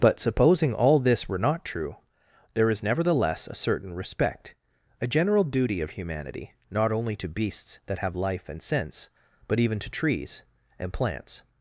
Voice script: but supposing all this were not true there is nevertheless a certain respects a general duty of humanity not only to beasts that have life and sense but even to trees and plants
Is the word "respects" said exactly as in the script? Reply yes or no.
no